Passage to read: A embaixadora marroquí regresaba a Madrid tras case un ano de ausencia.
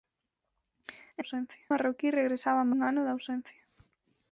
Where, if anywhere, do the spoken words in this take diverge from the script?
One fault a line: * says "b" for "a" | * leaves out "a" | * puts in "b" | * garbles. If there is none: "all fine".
* says "ausencia" for "embaixadora"
* leaves out "Madrid tras case"